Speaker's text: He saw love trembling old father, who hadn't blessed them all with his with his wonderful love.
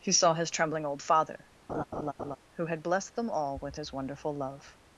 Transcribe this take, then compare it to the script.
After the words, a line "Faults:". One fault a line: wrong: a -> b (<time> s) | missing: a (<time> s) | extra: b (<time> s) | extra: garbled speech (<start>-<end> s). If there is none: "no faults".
He saw his trembling old father, who had blessed them all with his wonderful love.
Faults:
wrong: love -> his (0.3 s)
wrong: hadn't -> had (2.7 s)
missing: with his (3.9 s)